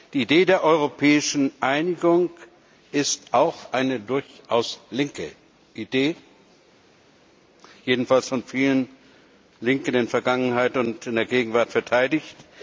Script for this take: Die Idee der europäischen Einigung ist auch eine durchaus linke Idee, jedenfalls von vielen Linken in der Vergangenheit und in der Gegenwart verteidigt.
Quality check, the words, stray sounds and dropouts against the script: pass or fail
pass